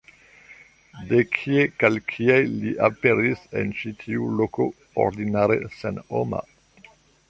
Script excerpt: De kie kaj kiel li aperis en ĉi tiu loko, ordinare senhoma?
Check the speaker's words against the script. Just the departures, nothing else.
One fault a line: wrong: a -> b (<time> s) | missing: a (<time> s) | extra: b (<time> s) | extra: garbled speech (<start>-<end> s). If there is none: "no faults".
no faults